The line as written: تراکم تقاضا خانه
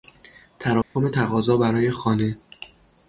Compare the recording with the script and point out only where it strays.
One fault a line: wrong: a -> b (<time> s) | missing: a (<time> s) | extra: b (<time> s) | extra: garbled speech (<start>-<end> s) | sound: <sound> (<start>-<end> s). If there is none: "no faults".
sound: dropout (0.8-1.0 s)
extra: برای (1.6 s)